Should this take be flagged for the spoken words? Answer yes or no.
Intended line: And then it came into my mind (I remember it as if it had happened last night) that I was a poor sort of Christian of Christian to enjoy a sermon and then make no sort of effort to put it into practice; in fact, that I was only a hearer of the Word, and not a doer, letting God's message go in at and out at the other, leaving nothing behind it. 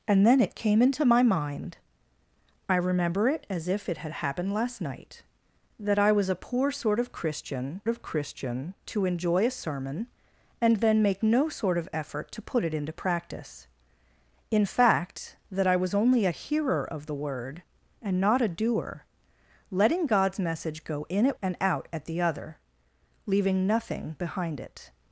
no